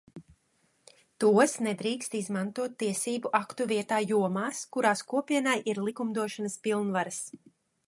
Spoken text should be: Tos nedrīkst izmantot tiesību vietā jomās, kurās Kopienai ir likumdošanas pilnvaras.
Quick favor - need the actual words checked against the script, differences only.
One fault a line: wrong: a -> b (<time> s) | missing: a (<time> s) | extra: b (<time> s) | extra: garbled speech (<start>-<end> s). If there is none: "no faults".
extra: aktu (3.4 s)